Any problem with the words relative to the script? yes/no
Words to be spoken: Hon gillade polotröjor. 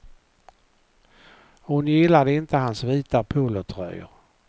yes